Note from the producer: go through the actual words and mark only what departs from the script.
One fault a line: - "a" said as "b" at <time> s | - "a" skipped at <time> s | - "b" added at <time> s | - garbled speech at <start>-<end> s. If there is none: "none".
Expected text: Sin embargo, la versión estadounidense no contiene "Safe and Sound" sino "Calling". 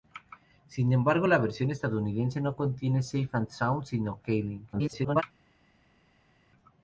- garbled speech at 4.7-5.2 s